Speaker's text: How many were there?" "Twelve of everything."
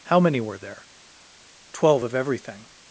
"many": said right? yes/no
yes